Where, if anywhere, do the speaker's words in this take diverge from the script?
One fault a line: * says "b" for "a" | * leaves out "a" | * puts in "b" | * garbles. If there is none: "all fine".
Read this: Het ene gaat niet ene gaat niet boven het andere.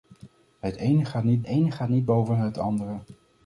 all fine